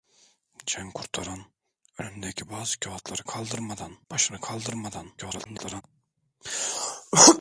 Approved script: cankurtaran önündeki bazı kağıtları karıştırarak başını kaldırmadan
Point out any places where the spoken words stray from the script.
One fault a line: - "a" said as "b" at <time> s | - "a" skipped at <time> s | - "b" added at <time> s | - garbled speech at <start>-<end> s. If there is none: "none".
- "karıştırarak" said as "kaldırmadan" at 3.2 s
- garbled speech at 5.2-5.8 s